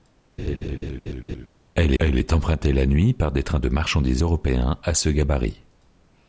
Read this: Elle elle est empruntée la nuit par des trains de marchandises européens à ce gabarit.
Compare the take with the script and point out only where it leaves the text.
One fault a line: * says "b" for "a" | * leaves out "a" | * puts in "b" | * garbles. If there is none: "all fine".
all fine